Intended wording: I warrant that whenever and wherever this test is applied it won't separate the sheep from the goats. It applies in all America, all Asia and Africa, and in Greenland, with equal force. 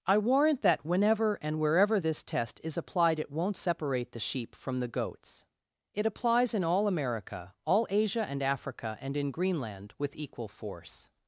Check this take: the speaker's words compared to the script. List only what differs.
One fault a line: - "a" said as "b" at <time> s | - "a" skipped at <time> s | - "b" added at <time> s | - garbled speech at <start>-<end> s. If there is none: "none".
none